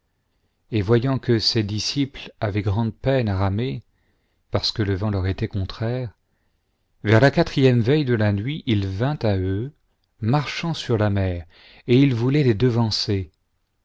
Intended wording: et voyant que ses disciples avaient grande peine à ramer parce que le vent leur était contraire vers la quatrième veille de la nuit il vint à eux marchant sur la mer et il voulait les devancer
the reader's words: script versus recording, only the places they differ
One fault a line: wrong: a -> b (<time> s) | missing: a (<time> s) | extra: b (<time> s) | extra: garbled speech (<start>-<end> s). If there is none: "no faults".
no faults